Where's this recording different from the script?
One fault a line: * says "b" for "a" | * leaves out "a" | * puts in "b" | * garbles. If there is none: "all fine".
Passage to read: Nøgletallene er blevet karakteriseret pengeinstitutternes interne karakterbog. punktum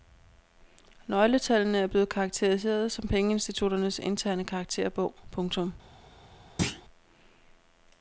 * puts in "som"